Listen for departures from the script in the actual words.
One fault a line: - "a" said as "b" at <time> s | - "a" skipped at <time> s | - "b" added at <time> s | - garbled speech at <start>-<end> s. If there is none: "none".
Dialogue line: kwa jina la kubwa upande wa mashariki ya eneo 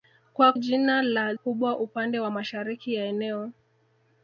none